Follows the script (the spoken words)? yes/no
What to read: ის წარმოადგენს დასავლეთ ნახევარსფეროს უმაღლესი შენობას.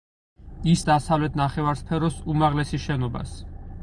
no